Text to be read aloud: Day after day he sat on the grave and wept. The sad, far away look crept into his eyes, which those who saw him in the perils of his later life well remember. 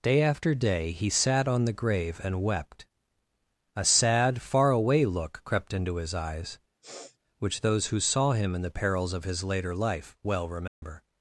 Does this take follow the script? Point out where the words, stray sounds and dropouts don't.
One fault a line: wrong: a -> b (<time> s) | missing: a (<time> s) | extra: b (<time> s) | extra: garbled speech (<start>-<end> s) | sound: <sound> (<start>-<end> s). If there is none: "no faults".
wrong: The -> A (3.8 s)
sound: sniff (6.8-7.2 s)
sound: dropout (10.7-10.8 s)